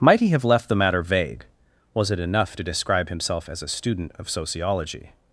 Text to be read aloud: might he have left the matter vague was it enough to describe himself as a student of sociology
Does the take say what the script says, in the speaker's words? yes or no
yes